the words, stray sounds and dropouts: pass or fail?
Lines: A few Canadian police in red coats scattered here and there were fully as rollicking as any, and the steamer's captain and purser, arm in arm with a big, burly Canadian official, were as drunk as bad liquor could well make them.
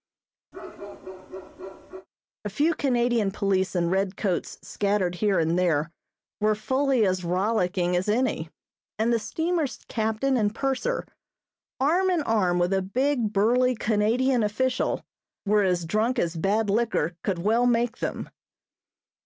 fail